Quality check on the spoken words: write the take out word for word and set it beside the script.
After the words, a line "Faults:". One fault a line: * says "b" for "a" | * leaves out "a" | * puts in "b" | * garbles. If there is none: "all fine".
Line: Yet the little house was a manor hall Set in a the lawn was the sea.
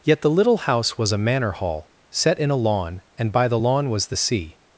Yet the little house was a manor hall Set in a lawn, and by the lawn was the sea.
Faults:
* puts in "lawn and by"